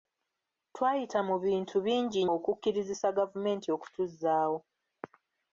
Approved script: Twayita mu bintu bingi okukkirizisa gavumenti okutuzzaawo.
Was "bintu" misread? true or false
false